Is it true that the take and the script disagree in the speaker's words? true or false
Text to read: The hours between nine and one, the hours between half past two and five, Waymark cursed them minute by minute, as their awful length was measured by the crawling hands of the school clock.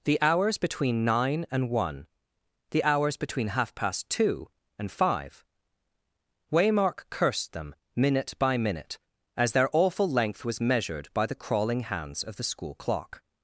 false